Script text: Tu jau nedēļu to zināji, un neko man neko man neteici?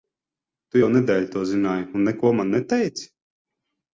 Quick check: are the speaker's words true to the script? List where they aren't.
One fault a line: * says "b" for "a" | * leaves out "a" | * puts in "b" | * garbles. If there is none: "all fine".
* leaves out "neko man"